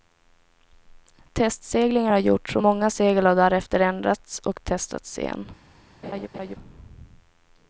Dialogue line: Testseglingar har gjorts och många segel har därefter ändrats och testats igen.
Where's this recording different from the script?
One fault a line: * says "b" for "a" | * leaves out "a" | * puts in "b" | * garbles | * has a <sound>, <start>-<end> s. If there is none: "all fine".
* has a laugh, 6.0-6.6 s